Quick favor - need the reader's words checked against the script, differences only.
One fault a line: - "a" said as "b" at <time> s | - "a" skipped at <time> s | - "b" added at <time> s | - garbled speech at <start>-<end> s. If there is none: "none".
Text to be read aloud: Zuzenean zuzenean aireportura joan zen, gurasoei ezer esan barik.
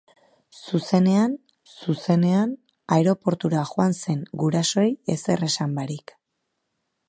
none